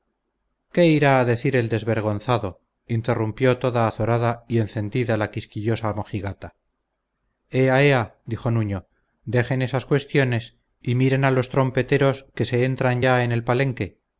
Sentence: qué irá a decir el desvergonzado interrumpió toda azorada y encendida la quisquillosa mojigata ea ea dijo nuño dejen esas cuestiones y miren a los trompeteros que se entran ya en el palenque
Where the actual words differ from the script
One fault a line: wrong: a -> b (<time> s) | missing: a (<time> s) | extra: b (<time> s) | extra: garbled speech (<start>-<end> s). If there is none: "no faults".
no faults